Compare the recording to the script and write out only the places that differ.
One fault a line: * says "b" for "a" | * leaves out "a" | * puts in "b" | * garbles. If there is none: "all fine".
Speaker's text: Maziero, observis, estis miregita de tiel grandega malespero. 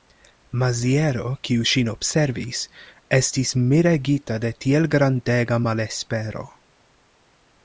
* puts in "kiu ŝin"